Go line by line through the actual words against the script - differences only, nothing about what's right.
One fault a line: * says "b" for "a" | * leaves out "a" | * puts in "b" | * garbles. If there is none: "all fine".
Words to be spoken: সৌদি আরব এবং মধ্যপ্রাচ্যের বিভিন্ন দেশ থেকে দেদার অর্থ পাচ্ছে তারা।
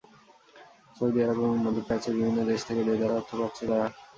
all fine